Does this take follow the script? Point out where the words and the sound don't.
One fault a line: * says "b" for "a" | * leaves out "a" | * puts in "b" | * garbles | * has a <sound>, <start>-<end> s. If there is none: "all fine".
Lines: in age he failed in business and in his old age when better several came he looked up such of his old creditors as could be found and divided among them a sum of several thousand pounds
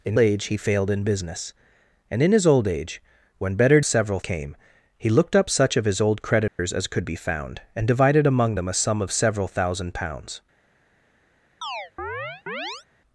* has a dropout, 6.5-6.6 s
* has a chirp, 11.6-12.9 s